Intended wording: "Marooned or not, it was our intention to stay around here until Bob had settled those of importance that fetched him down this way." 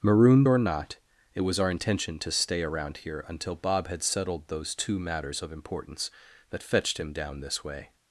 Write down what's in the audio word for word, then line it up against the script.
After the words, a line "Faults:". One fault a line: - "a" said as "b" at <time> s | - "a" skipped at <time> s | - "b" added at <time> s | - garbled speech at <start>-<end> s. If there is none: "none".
"Marooned or not, it was our intention to stay around here until Bob had settled those two matters of importance that fetched him down this way."
Faults:
- "two matters" added at 4.7 s